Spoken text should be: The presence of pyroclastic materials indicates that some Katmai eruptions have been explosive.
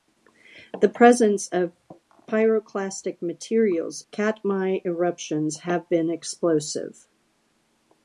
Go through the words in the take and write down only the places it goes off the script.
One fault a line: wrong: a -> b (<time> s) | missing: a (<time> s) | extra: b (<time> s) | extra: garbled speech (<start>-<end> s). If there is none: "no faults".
missing: indicates that some (4.0 s)